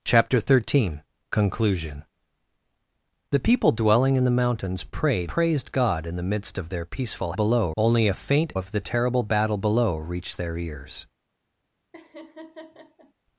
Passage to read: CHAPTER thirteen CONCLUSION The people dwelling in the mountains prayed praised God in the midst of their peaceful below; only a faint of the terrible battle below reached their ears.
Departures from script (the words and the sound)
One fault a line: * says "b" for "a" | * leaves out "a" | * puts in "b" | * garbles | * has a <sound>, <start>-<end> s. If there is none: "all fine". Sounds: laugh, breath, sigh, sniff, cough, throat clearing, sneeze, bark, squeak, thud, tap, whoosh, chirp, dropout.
* has a laugh, 11.9-13.1 s